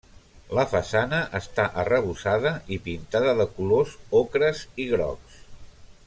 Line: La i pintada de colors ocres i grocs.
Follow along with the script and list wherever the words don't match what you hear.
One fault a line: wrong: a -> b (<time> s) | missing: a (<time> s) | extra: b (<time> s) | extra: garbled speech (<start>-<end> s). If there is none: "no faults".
extra: façana està arrebossada (0.7 s)